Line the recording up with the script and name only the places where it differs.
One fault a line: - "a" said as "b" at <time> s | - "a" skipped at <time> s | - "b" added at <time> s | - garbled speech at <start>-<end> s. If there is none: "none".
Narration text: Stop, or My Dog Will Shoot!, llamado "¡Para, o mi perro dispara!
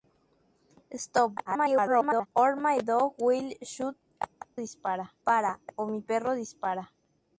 - garbled speech at 1.4-2.3 s
- "llamado" said as "dispara" at 4.6 s